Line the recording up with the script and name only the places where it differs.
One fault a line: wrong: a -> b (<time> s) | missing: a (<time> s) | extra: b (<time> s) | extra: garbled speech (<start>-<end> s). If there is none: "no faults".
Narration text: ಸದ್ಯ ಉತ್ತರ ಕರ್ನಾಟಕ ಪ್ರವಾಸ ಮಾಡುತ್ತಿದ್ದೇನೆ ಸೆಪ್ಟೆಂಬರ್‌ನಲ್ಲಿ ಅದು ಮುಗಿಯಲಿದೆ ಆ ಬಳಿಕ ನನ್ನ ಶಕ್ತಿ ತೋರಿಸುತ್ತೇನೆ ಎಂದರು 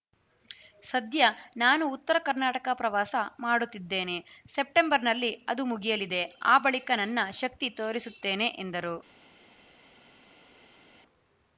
extra: ನಾನು (1.6 s)